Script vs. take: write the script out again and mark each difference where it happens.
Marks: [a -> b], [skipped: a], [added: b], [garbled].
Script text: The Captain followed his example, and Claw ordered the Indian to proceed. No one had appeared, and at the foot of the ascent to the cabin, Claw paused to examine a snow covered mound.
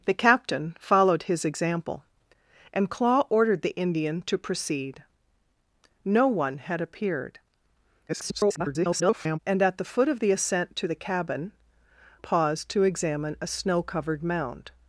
The Captain followed his example, and Claw ordered the Indian to proceed. No one had appeared, [garbled] and at the foot of the ascent to the cabin, [skipped: Claw] paused to examine a snow covered mound.